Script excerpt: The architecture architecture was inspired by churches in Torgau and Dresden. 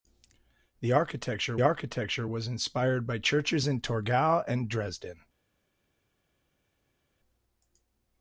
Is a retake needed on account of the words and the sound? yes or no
no